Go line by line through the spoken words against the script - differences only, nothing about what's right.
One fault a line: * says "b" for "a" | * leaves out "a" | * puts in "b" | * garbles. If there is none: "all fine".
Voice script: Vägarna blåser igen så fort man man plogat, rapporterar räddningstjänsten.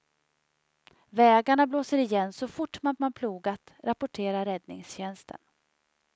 all fine